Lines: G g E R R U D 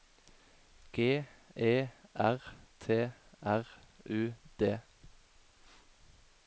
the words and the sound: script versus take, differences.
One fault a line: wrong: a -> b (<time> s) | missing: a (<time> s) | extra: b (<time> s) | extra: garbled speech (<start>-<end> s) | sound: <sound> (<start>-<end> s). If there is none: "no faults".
missing: g (1.2 s)
extra: T (2.8 s)